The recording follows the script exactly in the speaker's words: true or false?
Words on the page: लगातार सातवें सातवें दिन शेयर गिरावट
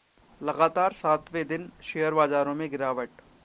false